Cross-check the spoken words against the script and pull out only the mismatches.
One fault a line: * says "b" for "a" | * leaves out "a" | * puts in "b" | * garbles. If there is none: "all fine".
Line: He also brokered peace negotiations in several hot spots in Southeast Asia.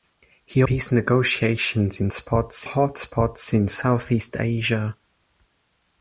* leaves out "also brokered"
* says "spots" for "several"